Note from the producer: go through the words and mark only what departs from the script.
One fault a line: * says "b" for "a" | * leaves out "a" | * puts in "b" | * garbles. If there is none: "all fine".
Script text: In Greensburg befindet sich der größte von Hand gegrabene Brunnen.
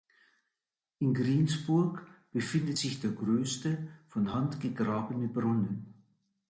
all fine